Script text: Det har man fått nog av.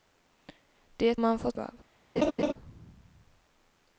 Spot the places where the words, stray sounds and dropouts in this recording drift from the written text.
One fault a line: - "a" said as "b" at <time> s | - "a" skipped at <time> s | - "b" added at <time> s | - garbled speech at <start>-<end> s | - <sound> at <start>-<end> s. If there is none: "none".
- "har" skipped at 1.2 s
- "nog" skipped at 1.6 s
- laugh at 2.2-2.5 s